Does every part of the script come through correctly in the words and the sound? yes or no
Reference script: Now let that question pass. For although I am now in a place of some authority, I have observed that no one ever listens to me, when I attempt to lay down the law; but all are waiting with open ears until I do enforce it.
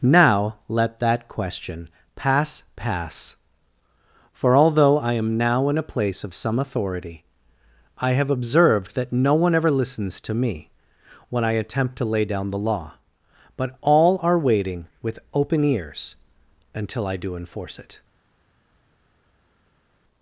no